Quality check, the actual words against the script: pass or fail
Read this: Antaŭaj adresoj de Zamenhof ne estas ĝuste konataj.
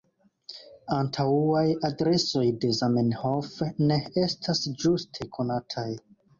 pass